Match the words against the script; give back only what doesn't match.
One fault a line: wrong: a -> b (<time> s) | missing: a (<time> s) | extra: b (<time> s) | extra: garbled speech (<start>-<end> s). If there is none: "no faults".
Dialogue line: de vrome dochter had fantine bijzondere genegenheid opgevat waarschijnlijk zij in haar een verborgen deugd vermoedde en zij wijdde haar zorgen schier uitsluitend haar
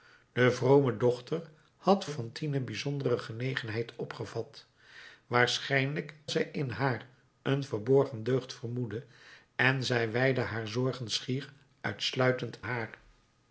no faults